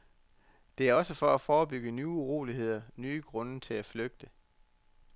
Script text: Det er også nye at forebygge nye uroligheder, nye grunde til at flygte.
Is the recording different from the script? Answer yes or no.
yes